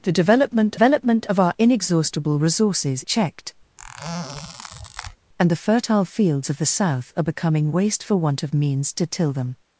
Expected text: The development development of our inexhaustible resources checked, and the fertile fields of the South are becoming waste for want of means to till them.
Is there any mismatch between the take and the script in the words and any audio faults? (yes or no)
yes